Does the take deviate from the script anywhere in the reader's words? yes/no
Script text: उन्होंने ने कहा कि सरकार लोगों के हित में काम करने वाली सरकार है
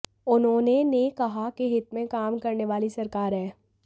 yes